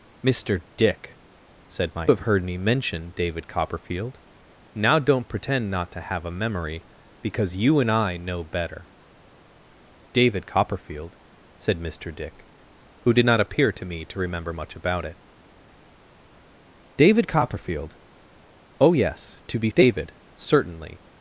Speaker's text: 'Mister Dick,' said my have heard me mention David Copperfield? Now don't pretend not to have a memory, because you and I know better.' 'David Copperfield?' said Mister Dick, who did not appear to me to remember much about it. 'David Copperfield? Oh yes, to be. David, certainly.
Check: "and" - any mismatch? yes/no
no